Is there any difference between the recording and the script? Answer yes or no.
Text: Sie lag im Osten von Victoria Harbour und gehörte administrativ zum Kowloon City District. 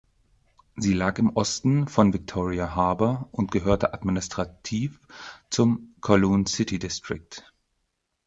no